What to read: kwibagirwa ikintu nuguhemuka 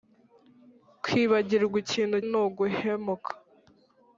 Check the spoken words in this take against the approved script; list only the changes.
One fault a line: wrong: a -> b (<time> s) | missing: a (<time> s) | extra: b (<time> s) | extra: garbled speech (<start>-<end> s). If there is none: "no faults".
no faults